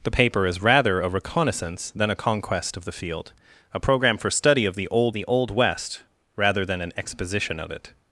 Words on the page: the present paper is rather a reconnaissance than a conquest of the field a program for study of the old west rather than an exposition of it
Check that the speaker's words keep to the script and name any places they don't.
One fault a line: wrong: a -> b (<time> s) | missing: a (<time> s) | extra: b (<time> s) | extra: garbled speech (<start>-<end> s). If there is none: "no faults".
missing: present (0.1 s)
extra: the old (5.1 s)